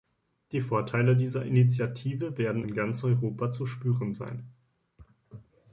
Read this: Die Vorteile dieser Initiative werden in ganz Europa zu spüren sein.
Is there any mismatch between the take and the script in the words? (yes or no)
no